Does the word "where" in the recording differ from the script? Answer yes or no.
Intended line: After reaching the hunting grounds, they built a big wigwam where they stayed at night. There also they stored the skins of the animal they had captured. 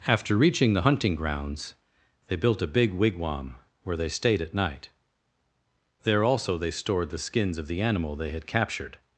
no